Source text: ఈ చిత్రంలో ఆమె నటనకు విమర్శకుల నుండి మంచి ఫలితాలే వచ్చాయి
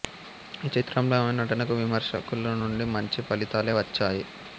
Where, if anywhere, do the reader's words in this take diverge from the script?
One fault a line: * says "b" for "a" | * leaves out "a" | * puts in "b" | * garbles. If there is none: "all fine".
all fine